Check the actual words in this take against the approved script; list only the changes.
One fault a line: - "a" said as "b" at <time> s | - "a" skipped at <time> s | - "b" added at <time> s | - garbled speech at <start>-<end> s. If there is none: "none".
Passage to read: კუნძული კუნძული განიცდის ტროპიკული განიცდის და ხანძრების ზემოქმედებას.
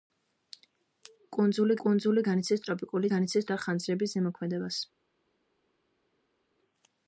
none